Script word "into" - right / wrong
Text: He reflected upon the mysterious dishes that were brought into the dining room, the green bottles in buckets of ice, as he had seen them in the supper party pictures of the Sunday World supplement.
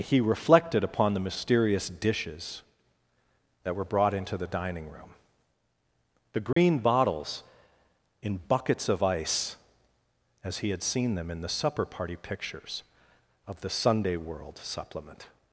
right